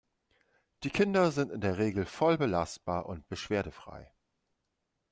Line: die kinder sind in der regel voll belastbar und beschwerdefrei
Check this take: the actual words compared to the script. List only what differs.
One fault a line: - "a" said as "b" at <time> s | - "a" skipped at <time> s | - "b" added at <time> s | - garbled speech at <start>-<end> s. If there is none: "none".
none